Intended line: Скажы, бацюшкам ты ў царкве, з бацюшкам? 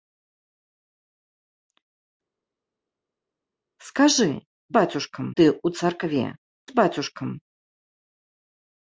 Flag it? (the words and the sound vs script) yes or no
no